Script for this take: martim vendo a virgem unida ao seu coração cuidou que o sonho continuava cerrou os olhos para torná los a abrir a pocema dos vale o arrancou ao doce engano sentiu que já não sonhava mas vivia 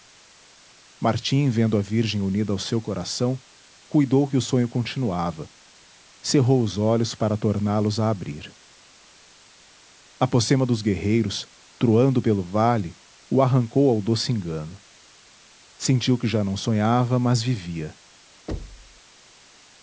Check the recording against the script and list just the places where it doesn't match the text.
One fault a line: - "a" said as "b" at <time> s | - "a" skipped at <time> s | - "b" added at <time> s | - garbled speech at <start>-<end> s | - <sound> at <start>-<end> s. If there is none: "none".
- "guerreiros troando pelo" added at 10.8 s
- thud at 18.5-19.0 s